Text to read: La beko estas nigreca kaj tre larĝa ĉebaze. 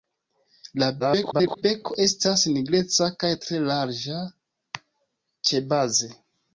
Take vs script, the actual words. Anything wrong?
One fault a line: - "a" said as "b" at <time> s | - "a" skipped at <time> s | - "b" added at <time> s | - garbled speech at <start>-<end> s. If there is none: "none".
- garbled speech at 1.0-1.6 s